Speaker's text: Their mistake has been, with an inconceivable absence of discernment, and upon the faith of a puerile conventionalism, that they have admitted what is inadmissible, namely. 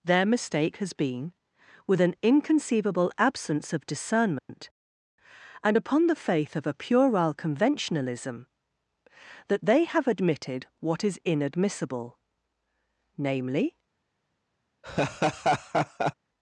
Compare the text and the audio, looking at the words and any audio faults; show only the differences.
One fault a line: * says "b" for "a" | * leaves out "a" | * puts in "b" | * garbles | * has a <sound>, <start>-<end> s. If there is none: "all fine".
* has a dropout, 4.4-4.5 s
* has a laugh, 14.8-16.1 s